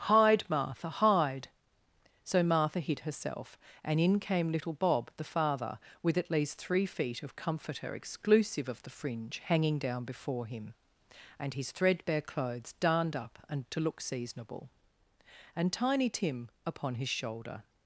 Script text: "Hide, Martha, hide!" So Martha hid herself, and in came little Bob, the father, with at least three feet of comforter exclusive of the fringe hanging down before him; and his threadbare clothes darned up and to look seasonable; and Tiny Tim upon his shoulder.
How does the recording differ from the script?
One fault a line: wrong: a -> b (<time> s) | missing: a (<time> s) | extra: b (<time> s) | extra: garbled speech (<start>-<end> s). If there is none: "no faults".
no faults